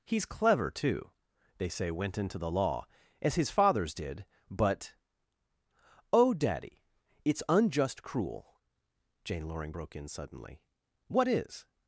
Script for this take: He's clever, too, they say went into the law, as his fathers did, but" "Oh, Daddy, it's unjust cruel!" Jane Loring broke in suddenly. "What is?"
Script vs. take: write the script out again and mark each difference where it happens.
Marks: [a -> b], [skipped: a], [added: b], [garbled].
He's clever, too, they say went into the law, as his fathers did, but" "Oh, Daddy, it's unjust cruel!" Jane Loring broke in suddenly. "What is?"